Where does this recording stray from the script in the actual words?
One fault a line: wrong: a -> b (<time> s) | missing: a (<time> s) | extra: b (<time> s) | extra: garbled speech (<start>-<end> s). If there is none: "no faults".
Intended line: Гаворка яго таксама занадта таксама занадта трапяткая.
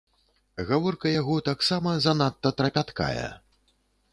missing: таксама занадта (2.5 s)